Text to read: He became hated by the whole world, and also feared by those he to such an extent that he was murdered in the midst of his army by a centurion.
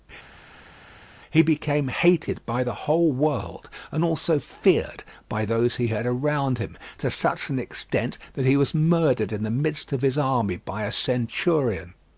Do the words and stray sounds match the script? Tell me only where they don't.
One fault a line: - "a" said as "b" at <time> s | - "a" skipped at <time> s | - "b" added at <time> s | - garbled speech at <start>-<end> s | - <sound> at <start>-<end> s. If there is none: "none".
- "had around him" added at 5.9 s